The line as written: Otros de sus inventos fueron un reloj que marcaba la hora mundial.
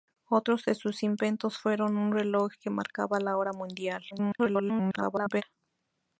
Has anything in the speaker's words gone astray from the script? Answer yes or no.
yes